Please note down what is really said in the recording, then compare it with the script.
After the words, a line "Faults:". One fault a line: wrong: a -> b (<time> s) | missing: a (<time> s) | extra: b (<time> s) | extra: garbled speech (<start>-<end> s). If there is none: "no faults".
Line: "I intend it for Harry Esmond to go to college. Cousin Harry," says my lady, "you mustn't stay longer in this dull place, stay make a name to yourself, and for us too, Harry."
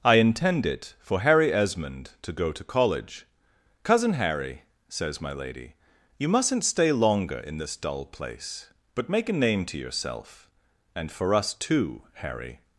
"I intend it for Harry Esmond to go to college. Cousin Harry," says my lady, "you mustn't stay longer in this dull place, but make a name to yourself, and for us too, Harry."
Faults:
wrong: stay -> but (8.9 s)